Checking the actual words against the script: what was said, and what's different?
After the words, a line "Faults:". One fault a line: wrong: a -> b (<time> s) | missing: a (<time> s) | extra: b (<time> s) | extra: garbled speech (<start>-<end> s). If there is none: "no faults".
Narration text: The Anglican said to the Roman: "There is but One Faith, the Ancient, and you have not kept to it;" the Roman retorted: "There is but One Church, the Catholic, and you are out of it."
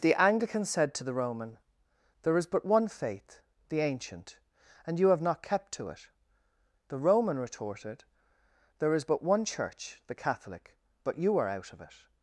The Anglican said to the Roman: "There is but One Faith, the Ancient, and you have not kept to it;" the Roman retorted: "There is but One Church, the Catholic, but you are out of it."
Faults:
wrong: and -> but (11.0 s)